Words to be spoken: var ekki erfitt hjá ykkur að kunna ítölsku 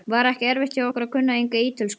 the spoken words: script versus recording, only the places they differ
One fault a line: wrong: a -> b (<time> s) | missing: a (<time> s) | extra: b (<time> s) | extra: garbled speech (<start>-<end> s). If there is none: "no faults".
extra: enga (1.4 s)